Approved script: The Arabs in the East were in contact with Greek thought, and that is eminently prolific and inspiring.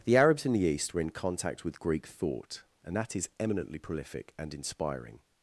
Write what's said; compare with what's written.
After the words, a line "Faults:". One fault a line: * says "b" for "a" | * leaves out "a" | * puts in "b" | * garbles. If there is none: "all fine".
The Arabs in the East were in contact with Greek thought, and that is eminently prolific and inspiring.
Faults:
all fine